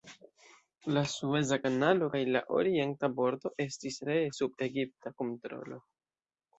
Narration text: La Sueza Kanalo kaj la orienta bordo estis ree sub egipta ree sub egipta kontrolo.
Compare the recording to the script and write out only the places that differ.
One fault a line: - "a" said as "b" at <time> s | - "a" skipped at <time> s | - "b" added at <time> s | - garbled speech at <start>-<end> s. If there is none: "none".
- "ree sub egipta" skipped at 5.1 s